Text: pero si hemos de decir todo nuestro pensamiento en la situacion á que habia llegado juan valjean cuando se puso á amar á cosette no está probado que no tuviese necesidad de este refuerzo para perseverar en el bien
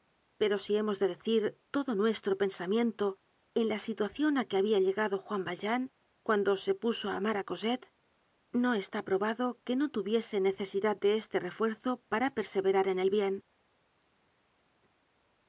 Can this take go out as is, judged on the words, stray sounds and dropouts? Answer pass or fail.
pass